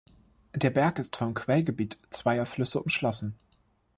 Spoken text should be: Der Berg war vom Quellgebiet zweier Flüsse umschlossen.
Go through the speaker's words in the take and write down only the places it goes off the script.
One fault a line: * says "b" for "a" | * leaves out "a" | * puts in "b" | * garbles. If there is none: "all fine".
* says "ist" for "war"